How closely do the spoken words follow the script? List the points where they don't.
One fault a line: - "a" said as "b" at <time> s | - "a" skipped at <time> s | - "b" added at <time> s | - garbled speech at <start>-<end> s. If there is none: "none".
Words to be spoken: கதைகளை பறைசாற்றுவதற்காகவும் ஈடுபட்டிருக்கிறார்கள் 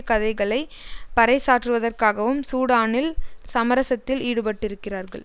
- "சூடானில் சமரசத்தில்" added at 2.4 s